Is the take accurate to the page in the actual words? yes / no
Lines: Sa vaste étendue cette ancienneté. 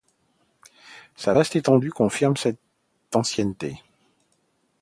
no